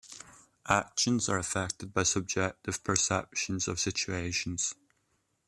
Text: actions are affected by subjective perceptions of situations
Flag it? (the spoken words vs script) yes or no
no